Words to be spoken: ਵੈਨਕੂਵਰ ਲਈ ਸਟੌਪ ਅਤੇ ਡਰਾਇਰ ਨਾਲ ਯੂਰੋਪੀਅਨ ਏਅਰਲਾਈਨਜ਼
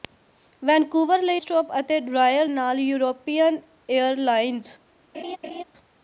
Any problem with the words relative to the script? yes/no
no